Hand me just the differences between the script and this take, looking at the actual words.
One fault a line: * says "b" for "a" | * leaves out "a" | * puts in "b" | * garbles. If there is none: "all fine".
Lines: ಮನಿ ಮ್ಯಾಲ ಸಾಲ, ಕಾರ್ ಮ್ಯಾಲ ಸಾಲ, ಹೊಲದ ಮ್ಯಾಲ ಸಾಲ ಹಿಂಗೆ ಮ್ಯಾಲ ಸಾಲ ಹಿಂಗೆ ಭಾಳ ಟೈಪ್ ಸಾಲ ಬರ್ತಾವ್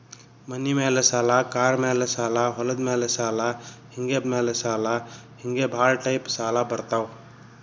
all fine